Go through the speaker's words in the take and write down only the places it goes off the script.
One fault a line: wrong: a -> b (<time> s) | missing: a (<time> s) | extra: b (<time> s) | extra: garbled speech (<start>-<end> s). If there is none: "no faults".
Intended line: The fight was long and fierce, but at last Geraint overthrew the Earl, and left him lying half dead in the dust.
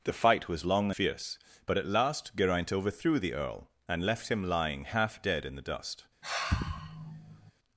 missing: and (0.9 s)